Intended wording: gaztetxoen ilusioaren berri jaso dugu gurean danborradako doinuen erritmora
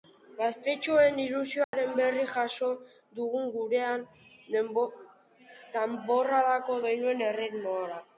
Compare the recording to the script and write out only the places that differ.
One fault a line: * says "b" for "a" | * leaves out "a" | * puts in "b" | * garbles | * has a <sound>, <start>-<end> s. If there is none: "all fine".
* has a dropout, 1.6-1.7 s